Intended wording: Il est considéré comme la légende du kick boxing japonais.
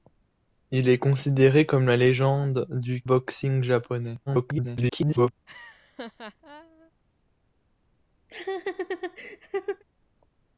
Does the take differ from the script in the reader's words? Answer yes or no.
yes